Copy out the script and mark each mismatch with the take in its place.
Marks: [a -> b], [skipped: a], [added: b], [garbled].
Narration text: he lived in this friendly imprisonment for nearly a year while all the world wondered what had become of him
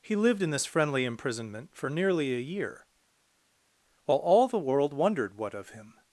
he lived in this friendly imprisonment for nearly a year while all the world wondered what [skipped: had become] of him